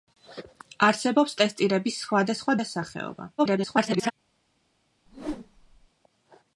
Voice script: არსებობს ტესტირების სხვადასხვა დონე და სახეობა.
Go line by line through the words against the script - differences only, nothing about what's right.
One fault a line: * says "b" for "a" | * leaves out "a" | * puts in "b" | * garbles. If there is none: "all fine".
* leaves out "დონე"
* garbles